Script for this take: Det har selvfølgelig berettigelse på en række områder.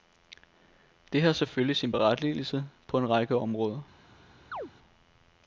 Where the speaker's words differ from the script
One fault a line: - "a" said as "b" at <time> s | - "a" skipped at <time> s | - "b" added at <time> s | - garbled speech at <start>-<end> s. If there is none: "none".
- "sin" added at 1.8 s